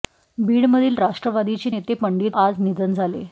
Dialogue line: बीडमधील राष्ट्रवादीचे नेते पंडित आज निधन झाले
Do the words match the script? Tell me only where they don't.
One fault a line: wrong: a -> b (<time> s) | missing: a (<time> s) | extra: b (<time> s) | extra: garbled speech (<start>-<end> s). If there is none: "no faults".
no faults